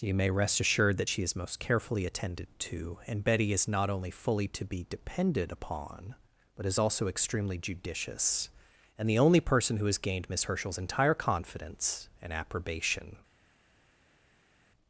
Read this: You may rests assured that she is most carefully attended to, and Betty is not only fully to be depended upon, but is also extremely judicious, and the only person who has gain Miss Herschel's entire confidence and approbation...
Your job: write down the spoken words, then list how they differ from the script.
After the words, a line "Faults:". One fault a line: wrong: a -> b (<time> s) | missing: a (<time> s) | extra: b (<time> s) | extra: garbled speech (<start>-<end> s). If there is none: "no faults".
You may rest assured that she is most carefully attended to, and Betty is not only fully to be depended upon, but is also extremely judicious, and the only person who has gained Miss Herschel's entire confidence and approbation...
Faults:
wrong: rests -> rest (0.3 s)
wrong: gain -> gained (10.0 s)